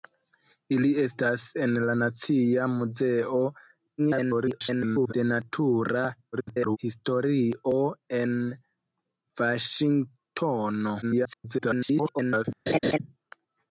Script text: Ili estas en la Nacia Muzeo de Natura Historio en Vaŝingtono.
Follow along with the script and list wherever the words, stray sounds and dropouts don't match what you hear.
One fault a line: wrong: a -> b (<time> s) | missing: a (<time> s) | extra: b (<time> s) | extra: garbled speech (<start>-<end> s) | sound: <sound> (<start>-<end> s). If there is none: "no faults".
extra: garbled speech (4.0-5.1 s)
extra: garbled speech (6.3-6.8 s)
extra: garbled speech (11.0-12.4 s)
sound: laugh (12.7-13.0 s)